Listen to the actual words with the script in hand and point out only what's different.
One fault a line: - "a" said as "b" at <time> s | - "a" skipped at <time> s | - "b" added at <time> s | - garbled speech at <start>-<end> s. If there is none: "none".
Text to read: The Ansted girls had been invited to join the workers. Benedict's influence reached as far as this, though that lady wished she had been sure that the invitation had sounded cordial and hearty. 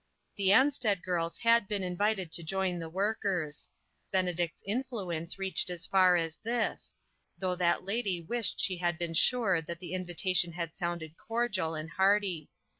none